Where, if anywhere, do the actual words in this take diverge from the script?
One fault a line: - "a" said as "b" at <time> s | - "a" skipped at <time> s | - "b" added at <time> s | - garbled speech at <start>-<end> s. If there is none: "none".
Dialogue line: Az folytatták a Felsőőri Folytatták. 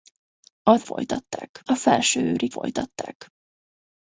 none